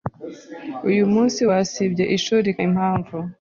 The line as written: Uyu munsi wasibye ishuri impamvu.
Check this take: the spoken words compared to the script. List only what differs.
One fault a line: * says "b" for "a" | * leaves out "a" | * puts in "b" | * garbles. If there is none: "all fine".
all fine